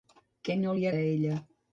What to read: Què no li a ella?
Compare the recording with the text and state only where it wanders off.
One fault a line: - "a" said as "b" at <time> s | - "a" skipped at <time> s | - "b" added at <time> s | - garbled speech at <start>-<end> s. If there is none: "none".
none